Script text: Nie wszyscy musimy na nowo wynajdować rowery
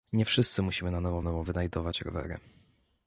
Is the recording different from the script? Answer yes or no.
yes